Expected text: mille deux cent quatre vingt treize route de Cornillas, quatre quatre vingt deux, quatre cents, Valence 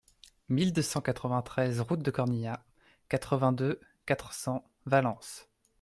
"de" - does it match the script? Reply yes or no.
yes